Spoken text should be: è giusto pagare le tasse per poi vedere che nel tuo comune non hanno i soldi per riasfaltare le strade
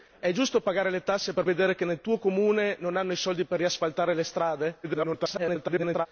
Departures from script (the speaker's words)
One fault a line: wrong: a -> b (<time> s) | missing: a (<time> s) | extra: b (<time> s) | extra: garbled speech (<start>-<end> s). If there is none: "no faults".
missing: poi (1.4 s)
extra: garbled speech (4.8-6.1 s)